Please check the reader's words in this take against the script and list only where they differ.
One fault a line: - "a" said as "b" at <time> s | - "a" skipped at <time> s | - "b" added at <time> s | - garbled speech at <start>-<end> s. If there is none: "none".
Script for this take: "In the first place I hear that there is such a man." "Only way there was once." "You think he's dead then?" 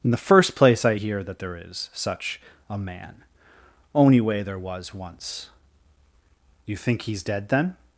none